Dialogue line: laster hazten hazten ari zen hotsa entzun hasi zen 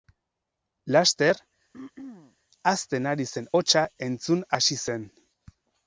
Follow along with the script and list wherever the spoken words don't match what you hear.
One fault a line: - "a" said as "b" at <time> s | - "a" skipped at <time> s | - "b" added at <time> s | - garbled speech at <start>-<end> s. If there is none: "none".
- "hazten" skipped at 3.1 s